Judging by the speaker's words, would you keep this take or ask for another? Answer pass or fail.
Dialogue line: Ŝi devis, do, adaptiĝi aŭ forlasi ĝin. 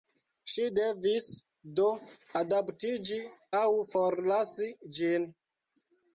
pass